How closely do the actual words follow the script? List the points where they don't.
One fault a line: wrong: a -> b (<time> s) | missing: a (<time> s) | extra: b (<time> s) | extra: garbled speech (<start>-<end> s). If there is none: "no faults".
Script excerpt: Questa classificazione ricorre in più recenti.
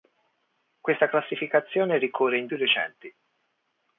no faults